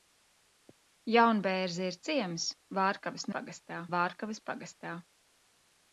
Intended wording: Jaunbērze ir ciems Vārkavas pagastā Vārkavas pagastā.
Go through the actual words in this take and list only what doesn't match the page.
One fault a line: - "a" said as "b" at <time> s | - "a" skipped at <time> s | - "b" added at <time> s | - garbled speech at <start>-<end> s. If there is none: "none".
none